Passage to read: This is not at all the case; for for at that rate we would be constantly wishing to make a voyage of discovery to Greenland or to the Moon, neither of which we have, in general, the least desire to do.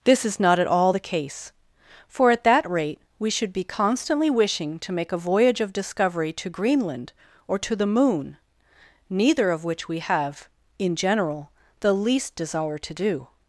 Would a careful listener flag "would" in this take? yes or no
yes